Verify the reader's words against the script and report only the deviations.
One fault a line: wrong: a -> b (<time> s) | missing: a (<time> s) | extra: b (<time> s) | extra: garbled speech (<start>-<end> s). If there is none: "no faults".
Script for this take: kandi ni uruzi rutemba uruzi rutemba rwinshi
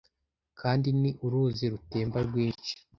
missing: uruzi rutemba (2.2 s)